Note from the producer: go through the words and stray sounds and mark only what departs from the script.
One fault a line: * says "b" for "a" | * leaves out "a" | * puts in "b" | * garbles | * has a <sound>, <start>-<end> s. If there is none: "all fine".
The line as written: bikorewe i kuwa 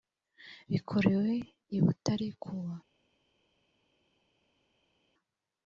* puts in "butare"